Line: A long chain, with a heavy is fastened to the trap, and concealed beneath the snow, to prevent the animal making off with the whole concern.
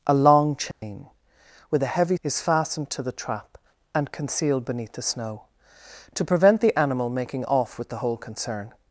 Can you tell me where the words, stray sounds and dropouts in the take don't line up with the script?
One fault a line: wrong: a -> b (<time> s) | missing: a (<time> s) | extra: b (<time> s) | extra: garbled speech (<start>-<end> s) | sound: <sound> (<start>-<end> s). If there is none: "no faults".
sound: dropout (0.7-0.8 s)